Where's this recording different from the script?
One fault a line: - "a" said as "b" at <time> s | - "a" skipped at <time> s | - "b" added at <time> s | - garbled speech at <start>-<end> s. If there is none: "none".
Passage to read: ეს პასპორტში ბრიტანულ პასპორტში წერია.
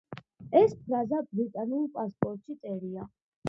- "პასპორტში" said as "ფრაზა" at 0.8 s